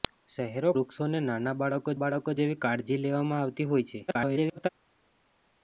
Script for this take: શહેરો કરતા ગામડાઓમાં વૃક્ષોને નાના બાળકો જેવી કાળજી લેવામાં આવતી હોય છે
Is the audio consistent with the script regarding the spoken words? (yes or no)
no